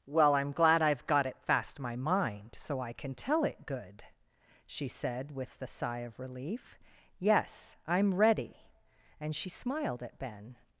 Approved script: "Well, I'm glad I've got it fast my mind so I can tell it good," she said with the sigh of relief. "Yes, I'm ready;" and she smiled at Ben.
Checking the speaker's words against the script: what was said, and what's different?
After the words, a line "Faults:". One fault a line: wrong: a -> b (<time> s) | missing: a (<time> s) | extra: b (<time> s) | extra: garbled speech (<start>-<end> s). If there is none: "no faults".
"Well, I'm glad I've got it fast my mind so I can tell it good," she said with the sigh of relief. "Yes, I'm ready;" and she smiled at Ben.
Faults:
no faults